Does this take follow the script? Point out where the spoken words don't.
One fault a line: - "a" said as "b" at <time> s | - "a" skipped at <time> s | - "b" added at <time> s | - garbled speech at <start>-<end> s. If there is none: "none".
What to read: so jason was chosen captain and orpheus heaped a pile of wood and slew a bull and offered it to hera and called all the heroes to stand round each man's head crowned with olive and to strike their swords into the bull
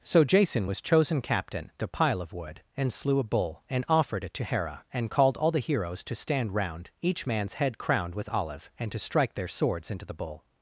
- "and orpheus heaped" skipped at 1.7 s